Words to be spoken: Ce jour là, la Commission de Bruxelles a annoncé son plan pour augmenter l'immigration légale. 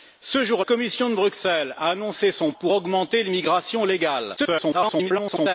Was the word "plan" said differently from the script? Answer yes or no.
yes